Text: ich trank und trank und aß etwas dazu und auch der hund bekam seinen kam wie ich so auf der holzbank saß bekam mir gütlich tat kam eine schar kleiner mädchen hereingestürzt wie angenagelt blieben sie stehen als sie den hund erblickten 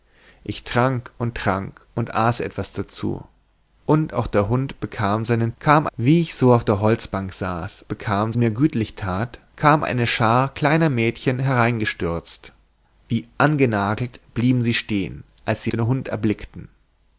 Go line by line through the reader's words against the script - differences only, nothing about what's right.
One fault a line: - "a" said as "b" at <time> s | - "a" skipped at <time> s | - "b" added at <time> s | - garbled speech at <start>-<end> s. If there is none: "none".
none